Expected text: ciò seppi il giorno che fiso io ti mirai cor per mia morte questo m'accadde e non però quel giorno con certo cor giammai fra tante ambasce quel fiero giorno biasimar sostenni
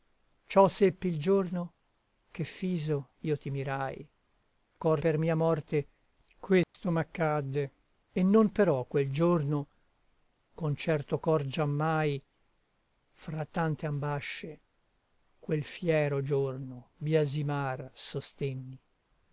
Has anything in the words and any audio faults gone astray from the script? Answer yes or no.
yes